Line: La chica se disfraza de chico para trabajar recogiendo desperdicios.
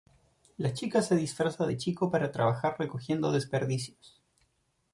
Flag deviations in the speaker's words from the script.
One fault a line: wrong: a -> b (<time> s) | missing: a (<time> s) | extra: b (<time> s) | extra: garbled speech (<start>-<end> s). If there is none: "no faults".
no faults